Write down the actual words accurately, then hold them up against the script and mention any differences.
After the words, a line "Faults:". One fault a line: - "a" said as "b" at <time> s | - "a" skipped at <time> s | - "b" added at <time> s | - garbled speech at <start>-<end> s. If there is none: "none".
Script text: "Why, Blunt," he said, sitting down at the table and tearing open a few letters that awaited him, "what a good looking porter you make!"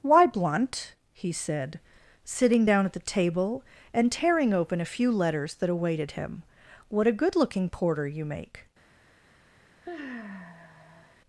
"Why, Blunt," he said, sitting down at the table and tearing open a few letters that awaited him, "what a good looking porter you make!"
Faults:
none